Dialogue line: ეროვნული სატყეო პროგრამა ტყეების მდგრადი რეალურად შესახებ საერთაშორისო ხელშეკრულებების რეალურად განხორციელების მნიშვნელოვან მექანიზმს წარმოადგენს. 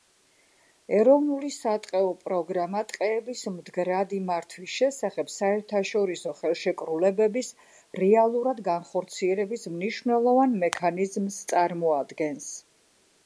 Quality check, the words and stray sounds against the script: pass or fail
fail